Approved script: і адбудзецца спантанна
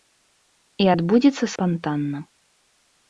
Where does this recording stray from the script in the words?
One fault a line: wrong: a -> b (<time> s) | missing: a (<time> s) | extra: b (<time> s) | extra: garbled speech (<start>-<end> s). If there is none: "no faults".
no faults